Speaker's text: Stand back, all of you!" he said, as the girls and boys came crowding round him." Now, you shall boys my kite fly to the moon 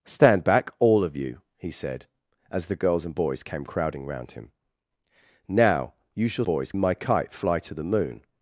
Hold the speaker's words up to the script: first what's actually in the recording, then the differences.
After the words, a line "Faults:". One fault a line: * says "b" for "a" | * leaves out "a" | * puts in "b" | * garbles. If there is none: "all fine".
Stand back, all of you!" he said, as the girls and boys came crowding round him." Now, you shall boys my kite fly to the moon
Faults:
all fine